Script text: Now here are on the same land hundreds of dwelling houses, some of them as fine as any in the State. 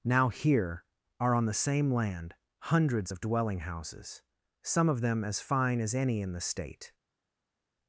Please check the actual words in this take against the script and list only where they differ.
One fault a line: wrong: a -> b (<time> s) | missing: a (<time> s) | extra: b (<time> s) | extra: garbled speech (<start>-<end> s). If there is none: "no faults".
no faults